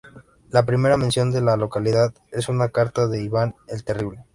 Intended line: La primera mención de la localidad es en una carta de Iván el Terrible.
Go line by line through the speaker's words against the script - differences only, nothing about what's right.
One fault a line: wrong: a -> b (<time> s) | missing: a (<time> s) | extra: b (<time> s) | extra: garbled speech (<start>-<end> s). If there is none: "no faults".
no faults